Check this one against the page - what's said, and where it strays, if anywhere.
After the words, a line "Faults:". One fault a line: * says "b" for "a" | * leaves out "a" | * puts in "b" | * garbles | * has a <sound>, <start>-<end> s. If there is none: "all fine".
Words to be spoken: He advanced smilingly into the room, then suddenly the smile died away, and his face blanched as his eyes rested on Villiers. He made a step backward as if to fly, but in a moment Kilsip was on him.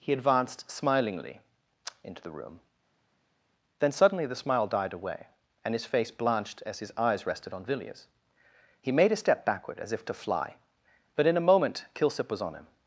He advanced smilingly into the room, then suddenly the smile died away, and his face blanched as his eyes rested on Villiers. He made a step backward as if to fly, but in a moment Kilsip was on him.
Faults:
all fine